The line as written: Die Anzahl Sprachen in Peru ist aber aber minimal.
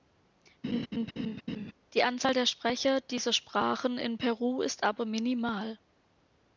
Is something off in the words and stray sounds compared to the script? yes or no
yes